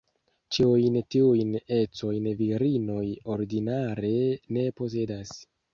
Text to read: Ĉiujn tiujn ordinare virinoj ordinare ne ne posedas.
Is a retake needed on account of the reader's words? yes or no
yes